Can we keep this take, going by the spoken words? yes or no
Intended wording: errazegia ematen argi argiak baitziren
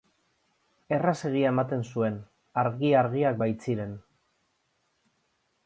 no